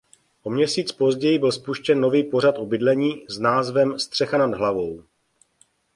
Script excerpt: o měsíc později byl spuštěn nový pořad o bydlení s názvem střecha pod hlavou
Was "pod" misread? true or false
true